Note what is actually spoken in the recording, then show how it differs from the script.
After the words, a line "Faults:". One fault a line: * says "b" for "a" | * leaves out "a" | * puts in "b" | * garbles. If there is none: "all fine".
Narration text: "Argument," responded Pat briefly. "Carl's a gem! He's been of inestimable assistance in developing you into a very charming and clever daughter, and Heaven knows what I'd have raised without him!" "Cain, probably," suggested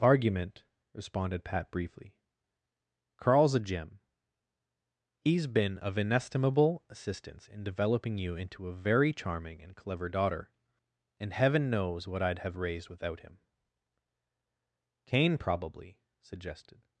"Argument," responded Pat briefly. "Carl's a gem! He's been of inestimable assistance in developing you into a very charming and clever daughter, and Heaven knows what I'd have raised without him!" "Cain, probably," suggested
Faults:
all fine